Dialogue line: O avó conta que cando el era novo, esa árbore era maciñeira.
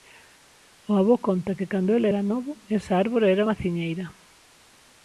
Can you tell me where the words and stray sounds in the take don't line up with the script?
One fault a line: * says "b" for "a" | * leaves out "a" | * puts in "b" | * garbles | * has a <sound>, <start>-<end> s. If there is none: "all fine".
all fine